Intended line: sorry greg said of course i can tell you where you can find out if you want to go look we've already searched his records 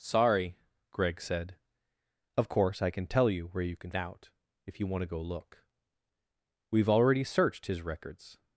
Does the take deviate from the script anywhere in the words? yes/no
yes